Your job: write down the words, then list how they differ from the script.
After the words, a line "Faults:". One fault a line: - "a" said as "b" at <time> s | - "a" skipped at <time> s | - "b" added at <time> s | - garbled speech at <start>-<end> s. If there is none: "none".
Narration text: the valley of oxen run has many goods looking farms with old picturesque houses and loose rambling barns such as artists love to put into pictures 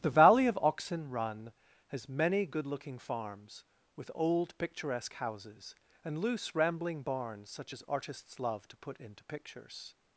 the valley of oxen run has many good looking farms with old picturesque houses and loose rambling barns such as artists love to put into pictures
Faults:
- "goods" said as "good" at 2.5 s